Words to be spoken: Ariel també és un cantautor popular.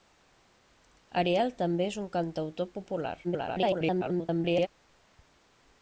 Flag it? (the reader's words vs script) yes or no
yes